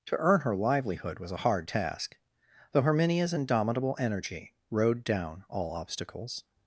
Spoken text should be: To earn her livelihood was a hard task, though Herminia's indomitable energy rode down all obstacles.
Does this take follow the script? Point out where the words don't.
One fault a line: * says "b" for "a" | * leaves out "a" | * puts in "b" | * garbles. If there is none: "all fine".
all fine